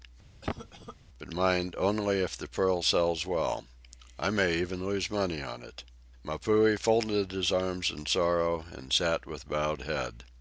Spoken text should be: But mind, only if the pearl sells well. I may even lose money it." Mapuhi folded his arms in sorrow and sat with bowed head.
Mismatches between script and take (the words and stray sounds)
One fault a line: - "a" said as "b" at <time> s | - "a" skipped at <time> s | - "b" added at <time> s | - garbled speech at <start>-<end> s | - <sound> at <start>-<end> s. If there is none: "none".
- cough at 0.4-1.0 s
- "on" added at 5.4 s